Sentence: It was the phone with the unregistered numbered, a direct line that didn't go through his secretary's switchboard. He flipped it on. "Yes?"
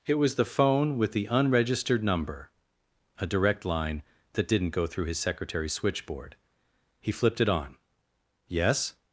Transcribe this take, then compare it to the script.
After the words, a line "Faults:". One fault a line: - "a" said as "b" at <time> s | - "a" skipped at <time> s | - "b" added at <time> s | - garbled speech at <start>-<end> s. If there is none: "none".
It was the phone with the unregistered number, a direct line that didn't go through his secretary's switchboard. He flipped it on. "Yes?"
Faults:
- "numbered" said as "number" at 2.0 s